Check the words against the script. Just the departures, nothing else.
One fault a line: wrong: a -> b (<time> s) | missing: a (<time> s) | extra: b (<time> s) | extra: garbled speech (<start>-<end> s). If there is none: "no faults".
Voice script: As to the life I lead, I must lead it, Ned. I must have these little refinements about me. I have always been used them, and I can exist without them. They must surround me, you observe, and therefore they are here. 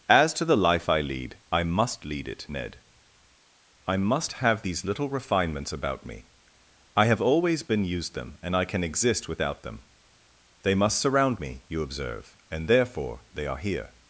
no faults